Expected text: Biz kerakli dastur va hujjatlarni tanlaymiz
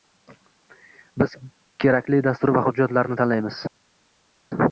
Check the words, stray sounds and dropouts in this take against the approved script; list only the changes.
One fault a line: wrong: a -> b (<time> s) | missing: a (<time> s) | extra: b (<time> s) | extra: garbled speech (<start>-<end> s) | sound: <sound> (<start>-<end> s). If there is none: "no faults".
no faults